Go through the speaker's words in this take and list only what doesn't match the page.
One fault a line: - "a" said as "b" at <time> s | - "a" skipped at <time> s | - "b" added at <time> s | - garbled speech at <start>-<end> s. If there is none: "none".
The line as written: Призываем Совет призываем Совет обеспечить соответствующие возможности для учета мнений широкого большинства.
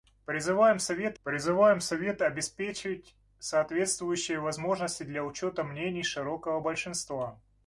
none